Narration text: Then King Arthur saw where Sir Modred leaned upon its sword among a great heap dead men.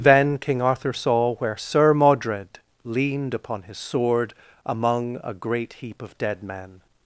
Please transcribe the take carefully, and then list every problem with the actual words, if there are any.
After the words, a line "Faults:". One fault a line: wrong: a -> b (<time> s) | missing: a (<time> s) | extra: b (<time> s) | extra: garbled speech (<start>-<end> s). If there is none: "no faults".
Then King Arthur saw where Sir Modred leaned upon his sword among a great heap of dead men.
Faults:
wrong: its -> his (3.6 s)
extra: of (6.0 s)